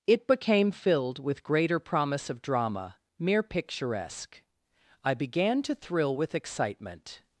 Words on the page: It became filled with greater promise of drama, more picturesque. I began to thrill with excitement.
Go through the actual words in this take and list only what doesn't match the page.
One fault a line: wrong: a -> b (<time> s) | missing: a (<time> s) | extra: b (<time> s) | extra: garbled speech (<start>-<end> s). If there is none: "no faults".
wrong: more -> mere (3.2 s)